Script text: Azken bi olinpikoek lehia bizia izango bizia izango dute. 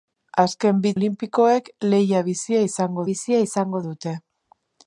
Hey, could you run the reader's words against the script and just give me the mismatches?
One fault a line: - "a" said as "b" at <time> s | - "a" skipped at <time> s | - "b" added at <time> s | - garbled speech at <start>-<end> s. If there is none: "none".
none